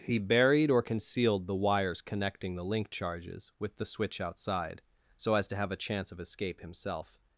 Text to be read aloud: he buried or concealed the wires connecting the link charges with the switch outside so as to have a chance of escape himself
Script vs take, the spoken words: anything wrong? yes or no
no